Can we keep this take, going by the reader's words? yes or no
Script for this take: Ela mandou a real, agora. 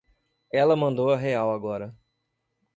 yes